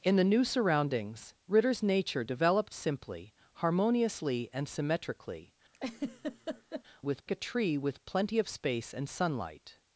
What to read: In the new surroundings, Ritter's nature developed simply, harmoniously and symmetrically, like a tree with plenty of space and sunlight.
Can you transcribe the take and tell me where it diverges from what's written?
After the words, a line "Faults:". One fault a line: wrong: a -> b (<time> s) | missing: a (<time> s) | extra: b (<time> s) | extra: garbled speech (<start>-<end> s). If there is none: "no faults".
In the new surroundings, Ritter's nature developed simply, harmoniously and symmetrically, with a tree with plenty of space and sunlight.
Faults:
wrong: like -> with (7.0 s)